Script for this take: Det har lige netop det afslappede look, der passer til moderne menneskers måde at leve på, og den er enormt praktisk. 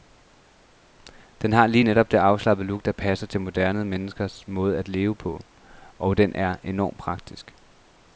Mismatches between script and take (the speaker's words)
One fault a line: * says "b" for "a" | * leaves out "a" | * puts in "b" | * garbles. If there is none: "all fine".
* says "Den" for "Det"